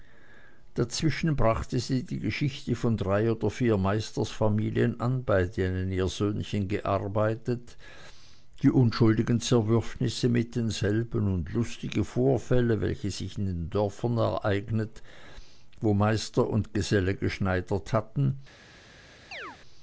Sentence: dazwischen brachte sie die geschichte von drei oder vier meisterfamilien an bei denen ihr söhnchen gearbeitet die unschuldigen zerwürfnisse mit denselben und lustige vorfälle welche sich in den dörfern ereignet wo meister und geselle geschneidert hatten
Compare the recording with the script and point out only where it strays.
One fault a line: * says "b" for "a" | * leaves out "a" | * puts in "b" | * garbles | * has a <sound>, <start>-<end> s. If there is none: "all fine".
* has a chirp, 19.3-19.6 s